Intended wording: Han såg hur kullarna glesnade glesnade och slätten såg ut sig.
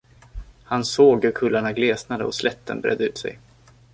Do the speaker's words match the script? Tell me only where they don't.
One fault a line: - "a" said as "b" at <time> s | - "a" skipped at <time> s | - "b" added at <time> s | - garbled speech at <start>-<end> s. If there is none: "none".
- "glesnade" skipped at 2.2 s
- "såg" said as "bredde" at 2.8 s